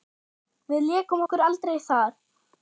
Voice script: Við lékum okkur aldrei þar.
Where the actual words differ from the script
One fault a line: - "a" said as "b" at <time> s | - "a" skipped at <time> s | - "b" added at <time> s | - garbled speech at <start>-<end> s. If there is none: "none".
none